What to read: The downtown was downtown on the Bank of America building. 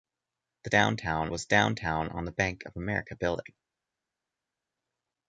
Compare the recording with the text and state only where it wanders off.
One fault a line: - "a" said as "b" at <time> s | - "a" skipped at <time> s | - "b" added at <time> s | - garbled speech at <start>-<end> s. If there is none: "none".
none